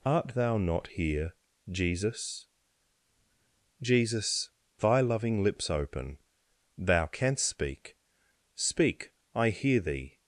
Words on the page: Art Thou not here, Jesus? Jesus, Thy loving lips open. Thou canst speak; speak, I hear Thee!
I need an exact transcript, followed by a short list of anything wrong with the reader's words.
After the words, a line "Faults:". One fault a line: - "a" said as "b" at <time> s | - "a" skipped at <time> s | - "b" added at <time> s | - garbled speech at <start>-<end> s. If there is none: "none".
Art Thou not here, Jesus? Jesus, Thy loving lips open. Thou canst speak; speak, I hear Thee!
Faults:
none